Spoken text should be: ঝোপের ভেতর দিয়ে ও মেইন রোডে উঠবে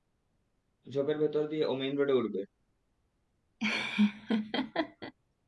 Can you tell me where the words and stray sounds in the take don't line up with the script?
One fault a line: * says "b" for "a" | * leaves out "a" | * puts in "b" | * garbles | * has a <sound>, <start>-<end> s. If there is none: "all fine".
* has a laugh, 3.6-5.1 s